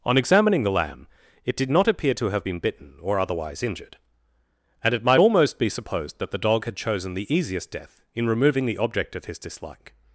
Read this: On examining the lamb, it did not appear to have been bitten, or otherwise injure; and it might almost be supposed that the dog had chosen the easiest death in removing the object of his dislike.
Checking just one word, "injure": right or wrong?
wrong